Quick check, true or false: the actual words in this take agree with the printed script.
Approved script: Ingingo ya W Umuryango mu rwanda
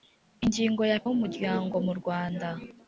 true